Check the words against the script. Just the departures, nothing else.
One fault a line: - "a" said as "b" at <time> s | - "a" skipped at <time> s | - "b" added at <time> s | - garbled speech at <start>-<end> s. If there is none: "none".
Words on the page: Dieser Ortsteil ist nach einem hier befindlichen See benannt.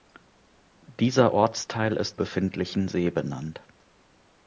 - "nach einem hier" skipped at 2.2 s